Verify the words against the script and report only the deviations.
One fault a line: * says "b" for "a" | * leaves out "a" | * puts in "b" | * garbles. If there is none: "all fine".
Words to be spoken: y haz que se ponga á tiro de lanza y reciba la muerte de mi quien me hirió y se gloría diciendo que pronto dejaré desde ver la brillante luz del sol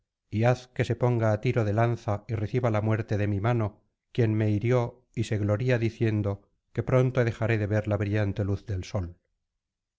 * puts in "mano"
* says "de" for "desde"